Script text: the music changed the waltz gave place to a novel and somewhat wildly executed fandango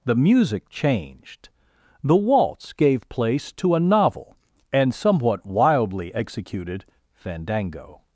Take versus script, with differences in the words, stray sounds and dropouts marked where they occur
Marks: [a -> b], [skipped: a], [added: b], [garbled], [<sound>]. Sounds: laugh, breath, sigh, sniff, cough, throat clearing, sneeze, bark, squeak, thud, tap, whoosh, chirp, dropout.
the music changed the waltz gave place to a novel and somewhat wildly executed fandango